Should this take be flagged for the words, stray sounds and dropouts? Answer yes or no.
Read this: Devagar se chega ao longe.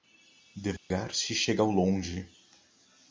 yes